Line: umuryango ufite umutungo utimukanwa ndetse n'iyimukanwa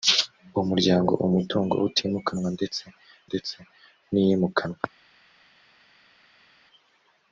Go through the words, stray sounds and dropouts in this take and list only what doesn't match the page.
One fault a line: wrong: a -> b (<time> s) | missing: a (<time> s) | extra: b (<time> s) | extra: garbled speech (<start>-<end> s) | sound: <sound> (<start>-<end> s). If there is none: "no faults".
missing: ufite (1.1 s)
extra: ndetse (3.3 s)